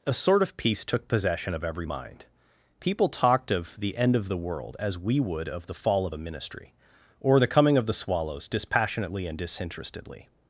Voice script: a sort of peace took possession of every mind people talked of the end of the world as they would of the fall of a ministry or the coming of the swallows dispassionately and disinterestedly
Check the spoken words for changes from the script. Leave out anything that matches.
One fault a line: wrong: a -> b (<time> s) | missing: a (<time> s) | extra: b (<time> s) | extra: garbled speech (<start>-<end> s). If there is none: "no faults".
wrong: they -> we (5.0 s)